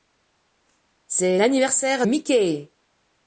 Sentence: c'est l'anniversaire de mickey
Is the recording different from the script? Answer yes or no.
yes